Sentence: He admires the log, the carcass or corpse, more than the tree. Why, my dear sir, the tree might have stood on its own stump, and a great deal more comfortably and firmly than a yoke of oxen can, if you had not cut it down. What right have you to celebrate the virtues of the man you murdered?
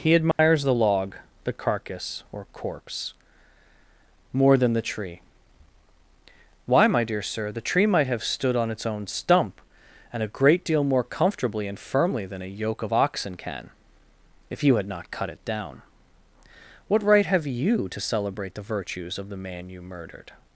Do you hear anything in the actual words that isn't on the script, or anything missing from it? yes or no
no